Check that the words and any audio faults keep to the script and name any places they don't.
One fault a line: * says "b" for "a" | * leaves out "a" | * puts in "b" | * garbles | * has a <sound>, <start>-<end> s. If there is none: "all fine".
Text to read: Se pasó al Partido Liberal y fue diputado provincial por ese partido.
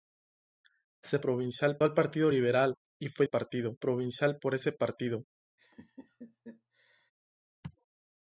* says "provincial" for "pasó"
* says "partido" for "diputado"
* has a laugh, 5.6-7.1 s